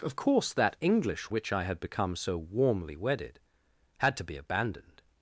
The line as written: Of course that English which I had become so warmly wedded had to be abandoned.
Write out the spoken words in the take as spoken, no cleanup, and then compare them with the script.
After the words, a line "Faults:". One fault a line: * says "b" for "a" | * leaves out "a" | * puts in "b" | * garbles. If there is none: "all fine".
Of course that English which I had become so warmly wedded had to be abandoned.
Faults:
all fine